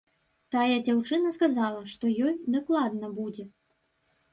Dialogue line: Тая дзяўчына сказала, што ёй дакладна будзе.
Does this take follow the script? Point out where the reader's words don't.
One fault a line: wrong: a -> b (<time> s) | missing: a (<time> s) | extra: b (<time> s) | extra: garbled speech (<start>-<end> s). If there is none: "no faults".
no faults